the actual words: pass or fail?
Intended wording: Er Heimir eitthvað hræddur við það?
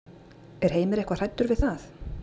pass